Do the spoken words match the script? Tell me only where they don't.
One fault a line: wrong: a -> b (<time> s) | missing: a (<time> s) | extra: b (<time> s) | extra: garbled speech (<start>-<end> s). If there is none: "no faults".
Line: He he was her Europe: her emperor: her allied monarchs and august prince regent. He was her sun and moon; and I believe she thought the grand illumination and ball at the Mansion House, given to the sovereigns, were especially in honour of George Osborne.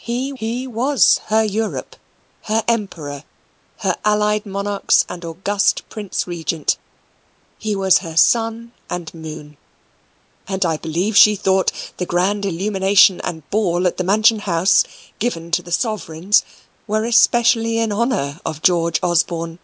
no faults